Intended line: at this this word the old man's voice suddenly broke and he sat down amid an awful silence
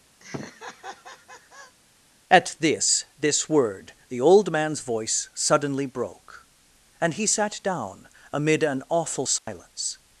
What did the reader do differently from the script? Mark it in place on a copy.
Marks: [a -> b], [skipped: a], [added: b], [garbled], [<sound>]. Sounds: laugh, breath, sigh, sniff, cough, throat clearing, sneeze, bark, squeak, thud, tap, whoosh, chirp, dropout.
[laugh] at this this word the old man's voice suddenly broke and he sat down amid an awful silence [dropout]